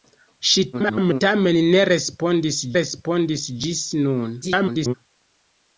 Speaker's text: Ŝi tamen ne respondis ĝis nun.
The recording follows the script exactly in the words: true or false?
false